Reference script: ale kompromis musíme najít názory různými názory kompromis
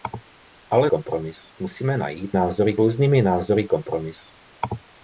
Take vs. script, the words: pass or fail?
pass